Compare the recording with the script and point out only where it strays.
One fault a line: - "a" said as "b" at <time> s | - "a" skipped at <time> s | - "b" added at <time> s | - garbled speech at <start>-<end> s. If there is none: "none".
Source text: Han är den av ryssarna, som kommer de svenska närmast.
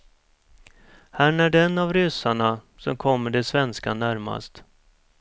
none